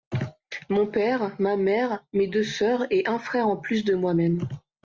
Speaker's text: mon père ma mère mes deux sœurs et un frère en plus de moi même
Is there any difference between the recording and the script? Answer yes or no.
no